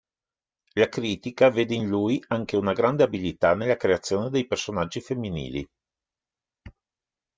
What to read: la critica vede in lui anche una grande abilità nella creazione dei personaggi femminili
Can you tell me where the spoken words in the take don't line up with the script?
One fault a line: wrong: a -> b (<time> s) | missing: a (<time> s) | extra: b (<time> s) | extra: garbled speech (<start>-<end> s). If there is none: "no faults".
no faults